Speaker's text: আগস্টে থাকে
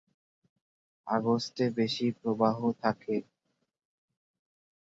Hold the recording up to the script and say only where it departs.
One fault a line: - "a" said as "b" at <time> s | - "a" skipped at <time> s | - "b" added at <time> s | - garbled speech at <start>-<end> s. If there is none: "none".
- "বেশি প্রবাহ" added at 1.8 s